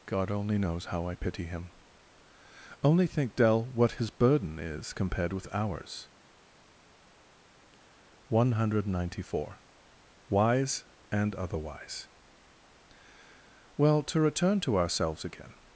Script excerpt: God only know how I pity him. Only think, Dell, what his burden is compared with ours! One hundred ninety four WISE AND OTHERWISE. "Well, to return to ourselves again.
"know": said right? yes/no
no